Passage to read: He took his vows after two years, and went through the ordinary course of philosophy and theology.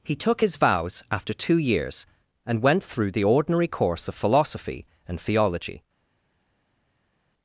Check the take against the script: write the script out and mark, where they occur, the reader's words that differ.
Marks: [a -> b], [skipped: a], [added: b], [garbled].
He took his vows after two years, and went through the ordinary course of philosophy and theology.